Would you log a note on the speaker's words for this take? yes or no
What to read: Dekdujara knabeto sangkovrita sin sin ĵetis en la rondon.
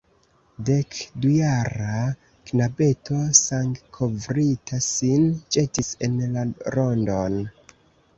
yes